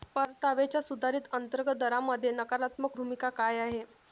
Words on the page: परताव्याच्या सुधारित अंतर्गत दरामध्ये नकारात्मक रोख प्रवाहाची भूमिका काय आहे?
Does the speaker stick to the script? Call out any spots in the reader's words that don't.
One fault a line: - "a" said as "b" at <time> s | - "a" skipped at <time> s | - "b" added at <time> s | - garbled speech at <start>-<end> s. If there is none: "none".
- "रोख प्रवाहाची" skipped at 3.0 s